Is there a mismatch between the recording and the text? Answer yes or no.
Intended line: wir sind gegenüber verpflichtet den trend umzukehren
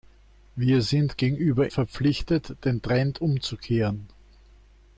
no